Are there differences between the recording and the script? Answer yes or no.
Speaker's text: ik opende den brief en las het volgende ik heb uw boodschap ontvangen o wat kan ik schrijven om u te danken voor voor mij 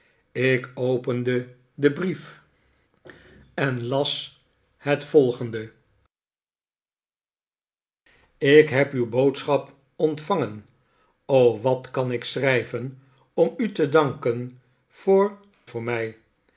no